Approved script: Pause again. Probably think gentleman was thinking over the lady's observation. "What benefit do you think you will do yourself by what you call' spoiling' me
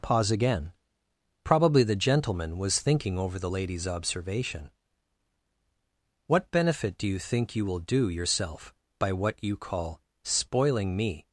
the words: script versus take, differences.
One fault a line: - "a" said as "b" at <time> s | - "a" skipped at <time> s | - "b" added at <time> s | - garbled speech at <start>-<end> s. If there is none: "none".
- "think" said as "the" at 1.8 s